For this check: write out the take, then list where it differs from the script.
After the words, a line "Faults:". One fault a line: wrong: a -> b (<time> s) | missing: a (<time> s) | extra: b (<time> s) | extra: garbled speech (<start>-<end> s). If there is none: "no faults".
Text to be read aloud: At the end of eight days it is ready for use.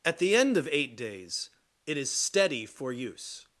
At the end of eight days it is steady for use.
Faults:
wrong: ready -> steady (2.1 s)